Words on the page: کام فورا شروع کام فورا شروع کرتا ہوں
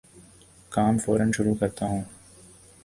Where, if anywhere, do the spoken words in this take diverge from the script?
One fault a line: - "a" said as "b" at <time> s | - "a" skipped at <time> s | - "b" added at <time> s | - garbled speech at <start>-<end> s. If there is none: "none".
- "کام فورا شروع" skipped at 1.6 s